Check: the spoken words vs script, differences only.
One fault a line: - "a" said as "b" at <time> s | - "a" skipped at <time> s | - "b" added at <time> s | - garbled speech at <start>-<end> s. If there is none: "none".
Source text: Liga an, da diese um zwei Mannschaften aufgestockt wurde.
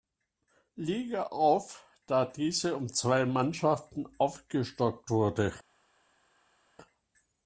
- "an" said as "auf" at 1.2 s